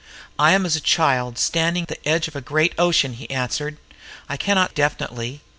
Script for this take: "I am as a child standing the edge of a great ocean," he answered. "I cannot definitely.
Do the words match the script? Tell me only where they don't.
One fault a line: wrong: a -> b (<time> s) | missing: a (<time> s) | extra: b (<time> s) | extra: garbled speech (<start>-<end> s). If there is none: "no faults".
no faults